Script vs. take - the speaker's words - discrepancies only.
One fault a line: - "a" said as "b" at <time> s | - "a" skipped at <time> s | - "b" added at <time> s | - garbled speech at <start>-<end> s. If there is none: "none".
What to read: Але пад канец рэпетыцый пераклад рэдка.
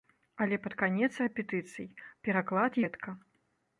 none